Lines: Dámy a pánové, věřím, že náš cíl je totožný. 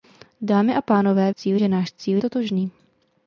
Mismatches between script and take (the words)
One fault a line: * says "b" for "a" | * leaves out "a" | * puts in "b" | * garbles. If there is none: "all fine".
* says "cíl" for "věřím"
* leaves out "je"